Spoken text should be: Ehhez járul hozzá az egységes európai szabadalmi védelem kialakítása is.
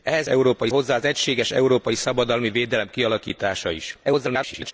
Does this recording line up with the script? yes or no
no